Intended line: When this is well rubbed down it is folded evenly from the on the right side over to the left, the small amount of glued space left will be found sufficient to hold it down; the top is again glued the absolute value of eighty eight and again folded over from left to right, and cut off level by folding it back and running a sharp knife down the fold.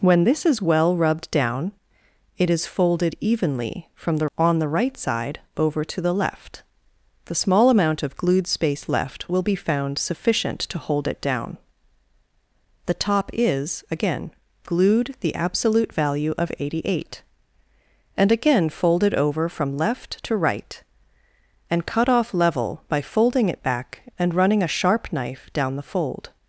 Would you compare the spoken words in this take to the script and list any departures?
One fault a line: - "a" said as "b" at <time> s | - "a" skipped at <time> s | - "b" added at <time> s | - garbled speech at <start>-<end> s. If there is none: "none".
none